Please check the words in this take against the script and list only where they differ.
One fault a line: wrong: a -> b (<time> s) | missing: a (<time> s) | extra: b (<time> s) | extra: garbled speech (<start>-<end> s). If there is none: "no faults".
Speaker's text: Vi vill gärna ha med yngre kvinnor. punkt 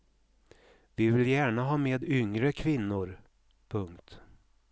no faults